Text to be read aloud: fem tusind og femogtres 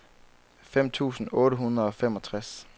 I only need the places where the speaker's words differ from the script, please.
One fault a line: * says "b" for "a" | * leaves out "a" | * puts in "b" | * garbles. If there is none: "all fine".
* puts in "otte hundrede"